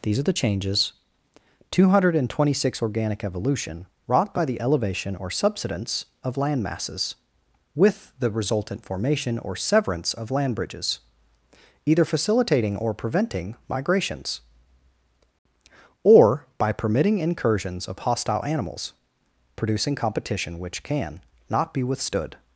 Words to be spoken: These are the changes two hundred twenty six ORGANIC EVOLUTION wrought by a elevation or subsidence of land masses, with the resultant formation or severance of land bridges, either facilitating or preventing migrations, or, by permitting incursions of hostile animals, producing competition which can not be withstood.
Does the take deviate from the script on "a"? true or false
true